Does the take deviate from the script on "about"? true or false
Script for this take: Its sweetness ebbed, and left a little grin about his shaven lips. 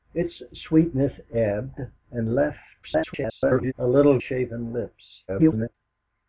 true